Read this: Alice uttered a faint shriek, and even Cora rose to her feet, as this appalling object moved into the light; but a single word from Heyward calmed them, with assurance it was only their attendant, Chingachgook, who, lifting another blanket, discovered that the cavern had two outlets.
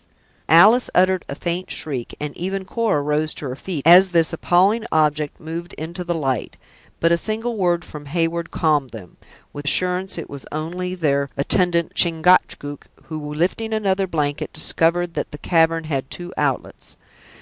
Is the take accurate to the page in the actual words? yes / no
yes